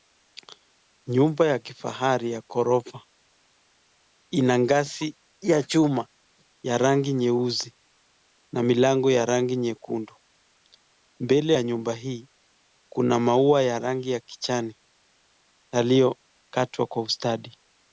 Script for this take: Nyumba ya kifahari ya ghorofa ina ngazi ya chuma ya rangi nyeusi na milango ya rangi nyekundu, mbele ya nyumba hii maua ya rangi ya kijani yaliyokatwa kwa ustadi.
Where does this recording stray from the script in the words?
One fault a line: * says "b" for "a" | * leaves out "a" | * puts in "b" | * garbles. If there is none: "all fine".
* puts in "kuna"